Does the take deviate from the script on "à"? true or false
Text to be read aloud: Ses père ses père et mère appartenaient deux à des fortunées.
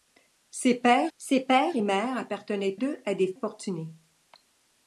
false